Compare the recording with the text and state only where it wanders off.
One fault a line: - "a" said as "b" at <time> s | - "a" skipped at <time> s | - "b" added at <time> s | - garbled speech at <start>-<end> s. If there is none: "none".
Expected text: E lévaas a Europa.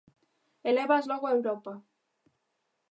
- "logo" added at 1.1 s